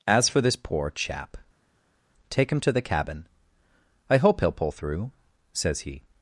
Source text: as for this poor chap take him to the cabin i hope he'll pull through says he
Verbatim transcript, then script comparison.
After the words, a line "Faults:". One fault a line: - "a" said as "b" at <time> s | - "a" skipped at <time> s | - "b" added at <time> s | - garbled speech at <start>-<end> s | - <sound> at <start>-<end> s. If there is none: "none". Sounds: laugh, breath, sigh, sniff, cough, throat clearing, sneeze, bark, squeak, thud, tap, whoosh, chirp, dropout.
as for this poor chap take him to the cabin i hope he'll pull through says he
Faults:
none